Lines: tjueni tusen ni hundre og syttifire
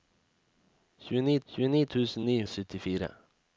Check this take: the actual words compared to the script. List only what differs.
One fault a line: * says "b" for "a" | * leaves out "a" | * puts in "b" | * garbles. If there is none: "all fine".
* puts in "tjueni"
* leaves out "hundre"